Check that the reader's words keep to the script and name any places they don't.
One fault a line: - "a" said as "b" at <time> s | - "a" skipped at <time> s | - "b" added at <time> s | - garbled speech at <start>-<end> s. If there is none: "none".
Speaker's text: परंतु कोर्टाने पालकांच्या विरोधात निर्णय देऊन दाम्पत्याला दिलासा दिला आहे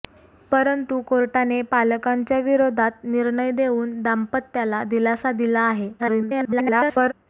- garbled speech at 6.0-7.1 s